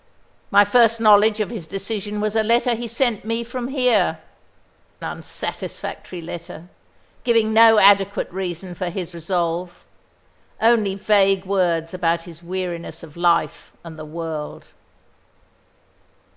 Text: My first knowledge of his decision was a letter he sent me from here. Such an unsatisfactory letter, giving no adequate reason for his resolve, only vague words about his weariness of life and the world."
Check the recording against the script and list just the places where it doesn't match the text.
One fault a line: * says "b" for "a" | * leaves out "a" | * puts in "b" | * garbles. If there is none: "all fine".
* leaves out "Such an"